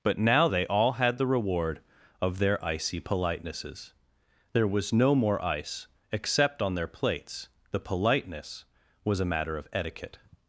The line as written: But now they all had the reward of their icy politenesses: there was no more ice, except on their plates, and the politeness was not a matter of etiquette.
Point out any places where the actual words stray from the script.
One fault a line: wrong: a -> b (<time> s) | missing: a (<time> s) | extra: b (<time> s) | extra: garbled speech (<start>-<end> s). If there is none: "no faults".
missing: and (7.5 s)
missing: not (9.2 s)